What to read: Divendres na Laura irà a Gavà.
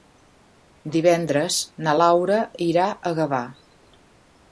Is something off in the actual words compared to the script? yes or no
no